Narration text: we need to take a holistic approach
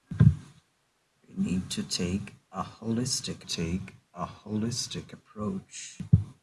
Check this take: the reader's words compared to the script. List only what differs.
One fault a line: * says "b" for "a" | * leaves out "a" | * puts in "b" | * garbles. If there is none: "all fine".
* puts in "take a holistic"